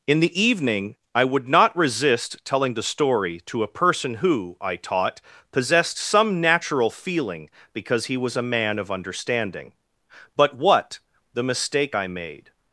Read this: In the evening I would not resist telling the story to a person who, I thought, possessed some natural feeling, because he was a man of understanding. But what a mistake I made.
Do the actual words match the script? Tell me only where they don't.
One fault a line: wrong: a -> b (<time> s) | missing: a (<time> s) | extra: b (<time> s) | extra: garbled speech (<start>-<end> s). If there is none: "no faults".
wrong: thought -> taught (4.8 s)
wrong: a -> the (11.3 s)